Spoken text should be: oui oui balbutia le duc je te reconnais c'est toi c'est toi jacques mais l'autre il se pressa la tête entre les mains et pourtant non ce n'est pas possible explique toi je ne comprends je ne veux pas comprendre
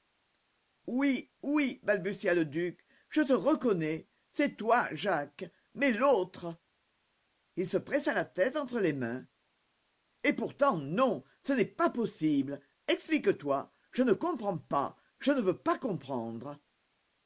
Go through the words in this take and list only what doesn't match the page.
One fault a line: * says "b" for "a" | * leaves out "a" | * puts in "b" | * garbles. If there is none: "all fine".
* leaves out "c'est toi"
* puts in "pas"